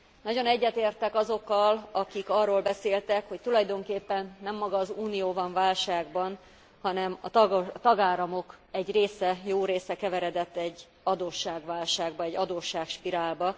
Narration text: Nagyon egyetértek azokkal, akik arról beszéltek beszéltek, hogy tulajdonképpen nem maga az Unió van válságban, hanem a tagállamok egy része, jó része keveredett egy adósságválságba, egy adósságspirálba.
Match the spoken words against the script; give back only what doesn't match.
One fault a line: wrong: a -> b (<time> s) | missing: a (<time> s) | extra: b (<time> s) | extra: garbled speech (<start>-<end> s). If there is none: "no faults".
missing: beszéltek (3.3 s)